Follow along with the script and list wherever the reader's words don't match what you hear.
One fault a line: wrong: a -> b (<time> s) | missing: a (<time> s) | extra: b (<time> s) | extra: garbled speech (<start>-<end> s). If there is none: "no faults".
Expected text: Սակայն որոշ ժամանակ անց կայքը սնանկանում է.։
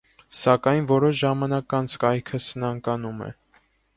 no faults